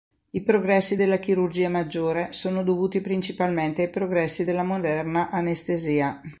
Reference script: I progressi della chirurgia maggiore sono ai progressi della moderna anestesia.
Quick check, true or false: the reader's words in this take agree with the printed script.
false